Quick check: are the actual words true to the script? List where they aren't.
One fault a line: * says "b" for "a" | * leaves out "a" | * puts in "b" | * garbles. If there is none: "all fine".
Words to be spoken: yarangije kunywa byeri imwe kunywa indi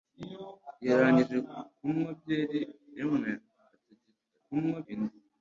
all fine